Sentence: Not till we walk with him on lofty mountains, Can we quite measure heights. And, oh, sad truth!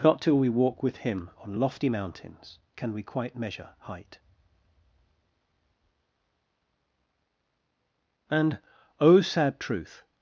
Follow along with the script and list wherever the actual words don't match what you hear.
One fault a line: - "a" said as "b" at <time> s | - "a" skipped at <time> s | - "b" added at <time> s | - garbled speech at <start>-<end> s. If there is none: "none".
- "heights" said as "height" at 3.8 s